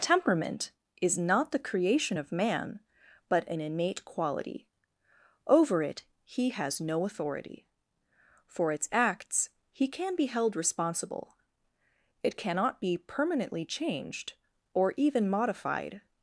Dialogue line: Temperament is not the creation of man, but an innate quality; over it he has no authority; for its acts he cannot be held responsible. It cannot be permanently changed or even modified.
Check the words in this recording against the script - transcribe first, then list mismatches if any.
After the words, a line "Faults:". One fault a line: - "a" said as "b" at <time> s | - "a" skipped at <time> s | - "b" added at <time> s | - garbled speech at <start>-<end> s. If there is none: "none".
Temperament is not the creation of man, but an innate quality; over it he has no authority; for its acts he can be held responsible. It cannot be permanently changed or even modified.
Faults:
- "cannot" said as "can" at 9.9 s